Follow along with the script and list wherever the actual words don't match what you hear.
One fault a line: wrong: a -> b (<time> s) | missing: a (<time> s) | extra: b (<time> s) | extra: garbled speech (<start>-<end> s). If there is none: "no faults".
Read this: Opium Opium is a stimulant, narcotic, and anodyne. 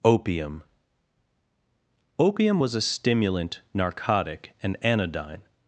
wrong: is -> was (2.6 s)